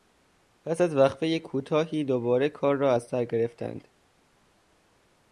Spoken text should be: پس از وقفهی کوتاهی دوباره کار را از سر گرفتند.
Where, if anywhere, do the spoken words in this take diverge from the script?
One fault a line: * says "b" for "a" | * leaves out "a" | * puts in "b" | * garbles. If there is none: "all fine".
all fine